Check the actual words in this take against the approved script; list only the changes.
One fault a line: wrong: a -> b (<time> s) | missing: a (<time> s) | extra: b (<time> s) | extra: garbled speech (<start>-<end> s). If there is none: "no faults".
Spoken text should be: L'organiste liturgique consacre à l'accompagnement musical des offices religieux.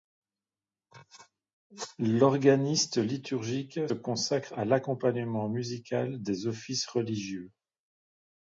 no faults